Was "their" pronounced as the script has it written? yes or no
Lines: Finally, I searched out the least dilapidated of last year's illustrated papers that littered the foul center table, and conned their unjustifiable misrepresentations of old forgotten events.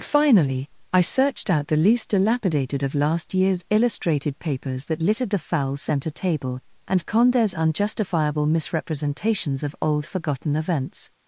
no